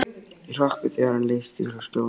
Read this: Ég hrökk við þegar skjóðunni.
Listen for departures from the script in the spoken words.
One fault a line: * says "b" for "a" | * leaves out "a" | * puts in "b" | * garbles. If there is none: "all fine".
* puts in "hann leysti frá"